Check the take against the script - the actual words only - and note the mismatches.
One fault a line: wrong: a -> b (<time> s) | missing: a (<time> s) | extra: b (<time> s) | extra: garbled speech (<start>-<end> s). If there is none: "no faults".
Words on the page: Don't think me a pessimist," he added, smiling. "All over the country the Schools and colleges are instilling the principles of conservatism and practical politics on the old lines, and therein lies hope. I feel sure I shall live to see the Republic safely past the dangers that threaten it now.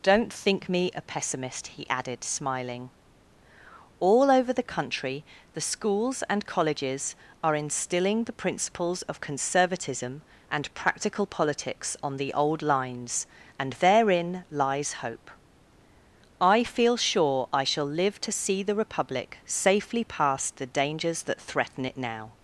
no faults